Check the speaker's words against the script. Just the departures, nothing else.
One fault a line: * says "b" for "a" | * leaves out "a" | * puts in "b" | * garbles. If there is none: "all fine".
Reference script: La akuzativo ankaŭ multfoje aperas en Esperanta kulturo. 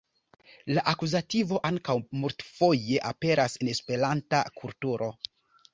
all fine